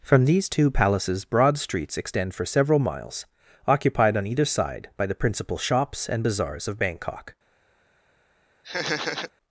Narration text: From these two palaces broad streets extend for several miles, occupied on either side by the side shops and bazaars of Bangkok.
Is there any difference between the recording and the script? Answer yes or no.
yes